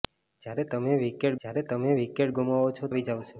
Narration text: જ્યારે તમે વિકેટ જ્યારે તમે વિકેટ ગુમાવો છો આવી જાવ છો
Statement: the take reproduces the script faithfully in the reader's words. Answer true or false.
true